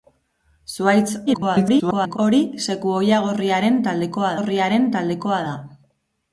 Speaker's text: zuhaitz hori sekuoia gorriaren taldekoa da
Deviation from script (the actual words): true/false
true